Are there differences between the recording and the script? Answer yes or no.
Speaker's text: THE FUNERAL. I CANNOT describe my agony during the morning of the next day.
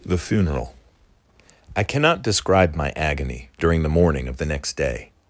no